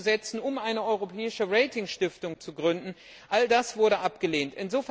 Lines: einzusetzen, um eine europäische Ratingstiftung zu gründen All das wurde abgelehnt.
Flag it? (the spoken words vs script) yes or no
no